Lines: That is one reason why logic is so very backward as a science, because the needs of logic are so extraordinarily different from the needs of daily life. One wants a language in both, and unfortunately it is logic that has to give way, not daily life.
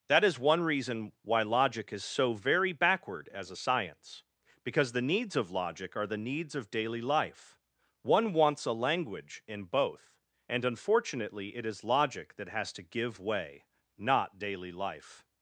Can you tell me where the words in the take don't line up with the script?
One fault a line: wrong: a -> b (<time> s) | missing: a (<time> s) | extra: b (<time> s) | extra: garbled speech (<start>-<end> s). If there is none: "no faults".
missing: so extraordinarily different from (6.1 s)